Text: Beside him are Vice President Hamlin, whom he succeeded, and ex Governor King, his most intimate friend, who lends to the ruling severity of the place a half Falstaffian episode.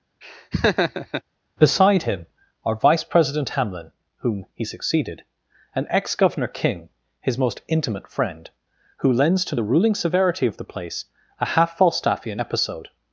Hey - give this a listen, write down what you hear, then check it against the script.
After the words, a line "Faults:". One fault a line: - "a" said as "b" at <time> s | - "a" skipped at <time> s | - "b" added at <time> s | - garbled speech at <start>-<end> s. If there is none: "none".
Beside him are Vice President Hamlin, whom he succeeded, and ex Governor King, his most intimate friend, who lends to the ruling severity of the place a half Falstaffian episode.
Faults:
none